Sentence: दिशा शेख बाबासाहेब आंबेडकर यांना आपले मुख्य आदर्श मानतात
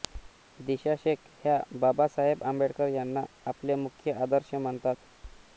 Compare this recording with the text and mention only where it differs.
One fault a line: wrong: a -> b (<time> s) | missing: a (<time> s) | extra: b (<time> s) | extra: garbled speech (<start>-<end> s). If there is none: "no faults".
extra: ह्या (1.4 s)